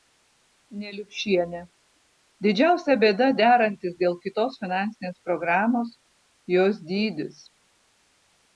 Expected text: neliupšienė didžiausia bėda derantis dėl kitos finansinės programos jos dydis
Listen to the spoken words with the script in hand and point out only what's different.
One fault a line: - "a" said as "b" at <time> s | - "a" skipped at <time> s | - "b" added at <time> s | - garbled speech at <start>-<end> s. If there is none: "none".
none